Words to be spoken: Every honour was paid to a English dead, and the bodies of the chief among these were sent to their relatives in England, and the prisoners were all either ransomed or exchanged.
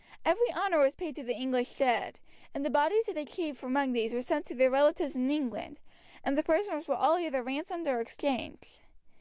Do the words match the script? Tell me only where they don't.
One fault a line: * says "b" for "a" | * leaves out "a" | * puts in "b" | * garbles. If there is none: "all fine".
* says "the" for "a"